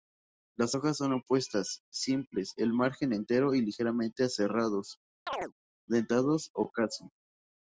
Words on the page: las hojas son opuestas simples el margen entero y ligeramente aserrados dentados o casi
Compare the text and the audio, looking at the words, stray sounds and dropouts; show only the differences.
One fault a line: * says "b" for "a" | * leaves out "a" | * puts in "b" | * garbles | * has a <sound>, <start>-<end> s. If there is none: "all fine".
* has a chirp, 5.3-5.5 s